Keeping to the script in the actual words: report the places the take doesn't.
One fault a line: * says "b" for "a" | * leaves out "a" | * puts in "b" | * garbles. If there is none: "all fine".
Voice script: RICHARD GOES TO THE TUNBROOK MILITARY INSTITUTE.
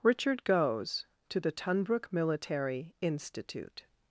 all fine